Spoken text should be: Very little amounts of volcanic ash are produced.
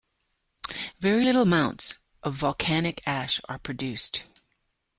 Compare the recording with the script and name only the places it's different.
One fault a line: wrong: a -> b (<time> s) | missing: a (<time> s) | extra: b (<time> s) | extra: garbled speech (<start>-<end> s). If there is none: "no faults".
no faults